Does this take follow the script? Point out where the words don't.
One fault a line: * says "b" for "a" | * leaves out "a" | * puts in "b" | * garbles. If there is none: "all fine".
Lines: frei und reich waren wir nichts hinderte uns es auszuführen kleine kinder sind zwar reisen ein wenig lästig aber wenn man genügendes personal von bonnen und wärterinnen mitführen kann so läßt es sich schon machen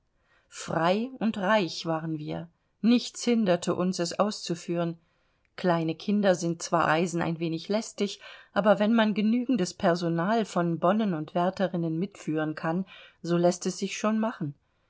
all fine